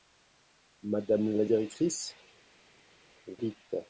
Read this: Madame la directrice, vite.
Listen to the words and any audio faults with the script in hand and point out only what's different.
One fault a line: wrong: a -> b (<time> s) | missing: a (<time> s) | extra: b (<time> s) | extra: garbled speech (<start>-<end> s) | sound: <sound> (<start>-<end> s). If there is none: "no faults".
no faults